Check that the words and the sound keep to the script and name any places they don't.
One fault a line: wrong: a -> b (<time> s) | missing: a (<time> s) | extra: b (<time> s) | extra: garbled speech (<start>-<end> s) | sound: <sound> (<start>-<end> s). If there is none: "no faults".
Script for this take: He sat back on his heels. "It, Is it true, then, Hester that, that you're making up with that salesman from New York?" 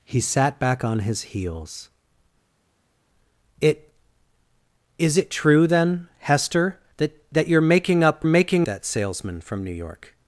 wrong: with -> making (8.2 s)